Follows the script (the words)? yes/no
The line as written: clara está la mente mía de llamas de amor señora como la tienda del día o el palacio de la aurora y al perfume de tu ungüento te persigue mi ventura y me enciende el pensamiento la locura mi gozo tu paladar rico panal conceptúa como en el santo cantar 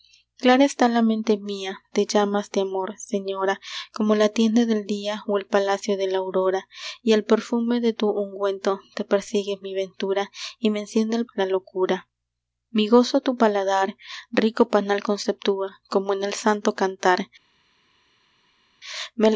no